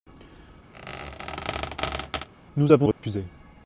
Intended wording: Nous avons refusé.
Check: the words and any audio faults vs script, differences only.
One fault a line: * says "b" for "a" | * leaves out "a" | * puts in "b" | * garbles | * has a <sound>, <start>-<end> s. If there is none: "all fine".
* has a squeak, 0.7-2.3 s
* has a dropout, 2.9-3.0 s